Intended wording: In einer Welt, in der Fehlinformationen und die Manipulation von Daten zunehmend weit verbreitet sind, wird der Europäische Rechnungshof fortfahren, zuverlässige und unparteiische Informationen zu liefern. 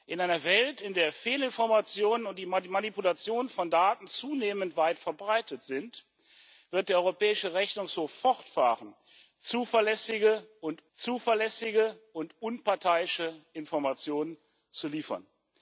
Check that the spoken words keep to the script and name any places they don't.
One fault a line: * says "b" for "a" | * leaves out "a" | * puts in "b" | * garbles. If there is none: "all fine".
* puts in "zuverlässige und"